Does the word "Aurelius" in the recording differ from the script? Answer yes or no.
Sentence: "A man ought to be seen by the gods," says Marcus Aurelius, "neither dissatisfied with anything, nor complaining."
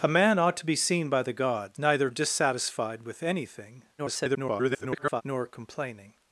yes